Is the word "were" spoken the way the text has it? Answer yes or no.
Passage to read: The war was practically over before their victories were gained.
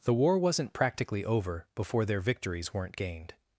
no